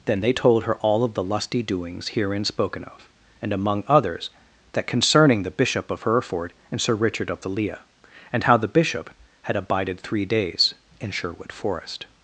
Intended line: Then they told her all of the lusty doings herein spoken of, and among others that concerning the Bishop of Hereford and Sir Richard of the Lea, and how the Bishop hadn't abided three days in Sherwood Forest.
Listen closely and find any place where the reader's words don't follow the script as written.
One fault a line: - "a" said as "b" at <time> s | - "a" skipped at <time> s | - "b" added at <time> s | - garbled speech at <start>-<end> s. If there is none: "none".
- "hadn't" said as "had" at 9.4 s